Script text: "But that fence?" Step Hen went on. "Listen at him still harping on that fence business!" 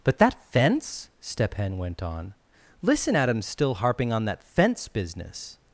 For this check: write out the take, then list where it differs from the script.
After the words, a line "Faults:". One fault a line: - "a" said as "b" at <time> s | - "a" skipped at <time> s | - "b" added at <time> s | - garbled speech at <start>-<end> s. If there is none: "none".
"But that fence?" Step Hen went on. "Listen at him still harping on that fence business!"
Faults:
none